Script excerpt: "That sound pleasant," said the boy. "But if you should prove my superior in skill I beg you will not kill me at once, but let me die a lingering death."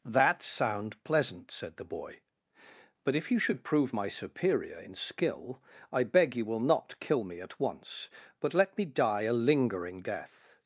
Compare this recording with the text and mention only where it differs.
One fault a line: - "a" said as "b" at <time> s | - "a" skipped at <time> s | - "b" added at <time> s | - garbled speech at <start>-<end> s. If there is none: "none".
none